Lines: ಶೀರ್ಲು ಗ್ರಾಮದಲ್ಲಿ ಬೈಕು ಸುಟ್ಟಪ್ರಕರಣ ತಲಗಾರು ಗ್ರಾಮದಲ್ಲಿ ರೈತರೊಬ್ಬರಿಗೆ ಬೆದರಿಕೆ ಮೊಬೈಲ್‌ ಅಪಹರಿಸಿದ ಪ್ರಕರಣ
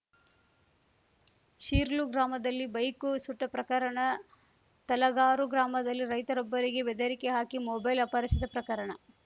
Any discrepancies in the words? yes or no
yes